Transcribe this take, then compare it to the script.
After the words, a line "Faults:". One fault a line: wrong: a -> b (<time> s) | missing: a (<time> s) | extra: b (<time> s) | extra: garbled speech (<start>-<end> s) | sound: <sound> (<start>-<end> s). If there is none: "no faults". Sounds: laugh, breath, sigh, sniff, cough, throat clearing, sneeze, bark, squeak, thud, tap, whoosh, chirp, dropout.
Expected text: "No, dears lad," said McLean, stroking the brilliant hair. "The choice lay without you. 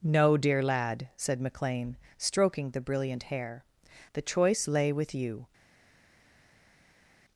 "No, dear lad," said McLean, stroking the brilliant hair. "The choice lay with you.
Faults:
wrong: dears -> dear (0.3 s)
wrong: without -> with (4.9 s)